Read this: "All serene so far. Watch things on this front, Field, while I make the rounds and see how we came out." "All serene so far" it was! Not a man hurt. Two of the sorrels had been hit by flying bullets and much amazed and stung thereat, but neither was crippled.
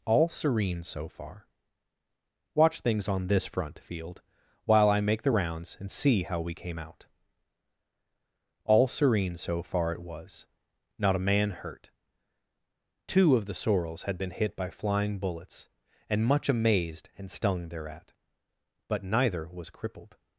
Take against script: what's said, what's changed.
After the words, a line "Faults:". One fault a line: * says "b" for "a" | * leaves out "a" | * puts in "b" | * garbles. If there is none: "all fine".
"All serene so far. Watch things on this front, Field, while I make the rounds and see how we came out." "All serene so far" it was! Not a man hurt. Two of the sorrels had been hit by flying bullets and much amazed and stung thereat, but neither was crippled.
Faults:
all fine